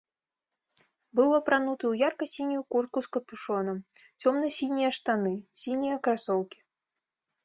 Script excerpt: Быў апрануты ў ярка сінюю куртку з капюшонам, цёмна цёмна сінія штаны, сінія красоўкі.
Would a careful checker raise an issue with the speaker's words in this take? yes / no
yes